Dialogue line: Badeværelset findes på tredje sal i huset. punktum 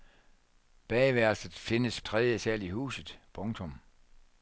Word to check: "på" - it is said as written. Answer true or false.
false